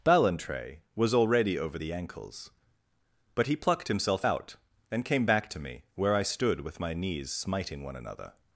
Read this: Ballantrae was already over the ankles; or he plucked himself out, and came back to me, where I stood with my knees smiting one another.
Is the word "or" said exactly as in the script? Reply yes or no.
no